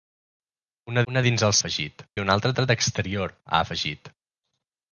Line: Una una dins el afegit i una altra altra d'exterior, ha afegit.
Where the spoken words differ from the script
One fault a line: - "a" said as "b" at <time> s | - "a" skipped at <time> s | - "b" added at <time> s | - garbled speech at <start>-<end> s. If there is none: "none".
none